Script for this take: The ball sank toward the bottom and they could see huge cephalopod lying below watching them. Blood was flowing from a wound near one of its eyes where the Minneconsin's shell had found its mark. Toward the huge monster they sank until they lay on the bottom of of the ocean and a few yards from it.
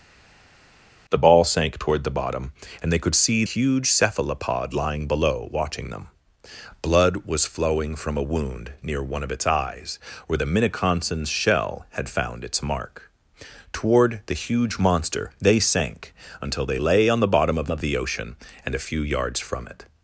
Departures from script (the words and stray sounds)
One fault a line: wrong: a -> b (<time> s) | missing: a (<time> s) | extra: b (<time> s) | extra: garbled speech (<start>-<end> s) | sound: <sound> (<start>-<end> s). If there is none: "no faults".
no faults